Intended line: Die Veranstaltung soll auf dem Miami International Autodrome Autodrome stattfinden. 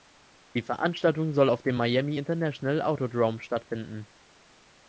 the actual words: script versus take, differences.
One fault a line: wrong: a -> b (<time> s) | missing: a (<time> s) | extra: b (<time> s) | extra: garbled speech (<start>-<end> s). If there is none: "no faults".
missing: Autodrome (3.4 s)